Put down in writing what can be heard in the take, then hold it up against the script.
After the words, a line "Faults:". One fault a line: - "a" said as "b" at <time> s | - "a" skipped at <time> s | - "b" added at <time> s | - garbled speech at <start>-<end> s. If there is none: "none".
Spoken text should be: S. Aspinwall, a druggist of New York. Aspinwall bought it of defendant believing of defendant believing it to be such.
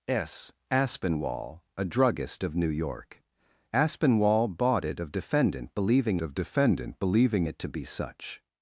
S. Aspinwall, a druggist of New York. Aspinwall bought it of defendant believing of defendant believing it to be such.
Faults:
none